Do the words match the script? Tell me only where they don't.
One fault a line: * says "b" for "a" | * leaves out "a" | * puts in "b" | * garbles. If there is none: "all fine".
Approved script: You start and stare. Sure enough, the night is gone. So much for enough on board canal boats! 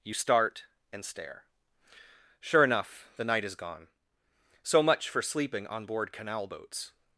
* says "sleeping" for "enough"